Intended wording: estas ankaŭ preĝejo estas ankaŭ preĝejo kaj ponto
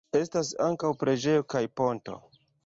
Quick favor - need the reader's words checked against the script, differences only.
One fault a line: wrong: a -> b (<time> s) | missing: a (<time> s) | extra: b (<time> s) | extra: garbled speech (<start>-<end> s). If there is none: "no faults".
missing: estas ankaŭ preĝejo (1.4 s)